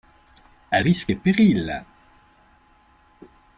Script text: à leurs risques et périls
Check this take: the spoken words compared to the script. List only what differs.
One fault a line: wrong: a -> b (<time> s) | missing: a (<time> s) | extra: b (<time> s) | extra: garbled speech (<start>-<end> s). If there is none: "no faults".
missing: leurs (0.8 s)